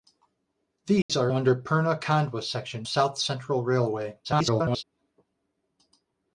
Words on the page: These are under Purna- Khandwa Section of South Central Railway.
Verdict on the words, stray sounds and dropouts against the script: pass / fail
fail